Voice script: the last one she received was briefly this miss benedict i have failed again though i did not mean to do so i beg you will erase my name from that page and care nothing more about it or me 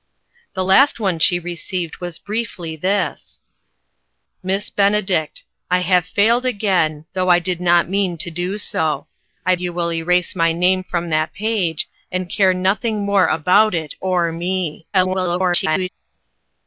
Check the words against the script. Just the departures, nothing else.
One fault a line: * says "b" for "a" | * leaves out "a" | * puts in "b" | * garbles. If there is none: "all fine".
* leaves out "beg"
* garbles